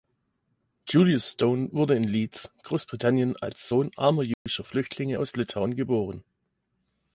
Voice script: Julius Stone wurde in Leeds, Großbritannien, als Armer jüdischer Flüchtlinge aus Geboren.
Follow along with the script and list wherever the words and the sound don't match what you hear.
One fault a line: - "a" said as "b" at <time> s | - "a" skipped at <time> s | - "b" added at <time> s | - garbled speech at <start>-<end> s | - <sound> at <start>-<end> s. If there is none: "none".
- "Sohn" added at 3.7 s
- dropout at 4.3-4.5 s
- "Litauen" added at 5.4 s